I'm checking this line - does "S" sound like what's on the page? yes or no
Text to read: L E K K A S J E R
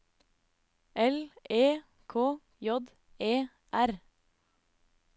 no